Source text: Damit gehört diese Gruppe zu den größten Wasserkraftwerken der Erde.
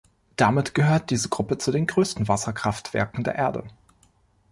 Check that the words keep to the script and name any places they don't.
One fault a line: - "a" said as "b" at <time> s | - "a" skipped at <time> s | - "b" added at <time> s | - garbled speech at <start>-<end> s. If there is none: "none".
none